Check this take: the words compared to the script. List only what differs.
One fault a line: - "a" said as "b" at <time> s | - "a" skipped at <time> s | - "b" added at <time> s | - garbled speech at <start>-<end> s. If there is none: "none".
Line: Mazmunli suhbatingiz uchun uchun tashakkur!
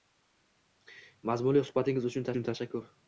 none